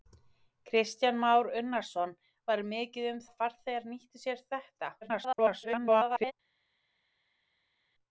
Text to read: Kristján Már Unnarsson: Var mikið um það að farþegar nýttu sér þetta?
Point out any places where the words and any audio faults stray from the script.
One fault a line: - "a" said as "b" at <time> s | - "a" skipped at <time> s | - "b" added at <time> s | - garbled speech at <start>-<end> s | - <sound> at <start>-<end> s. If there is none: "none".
- "það" skipped at 3.2 s
- garbled speech at 5.0-6.3 s